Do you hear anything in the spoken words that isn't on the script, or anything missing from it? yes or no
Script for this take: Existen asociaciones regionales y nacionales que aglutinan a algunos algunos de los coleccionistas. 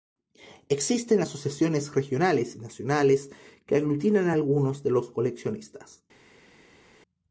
yes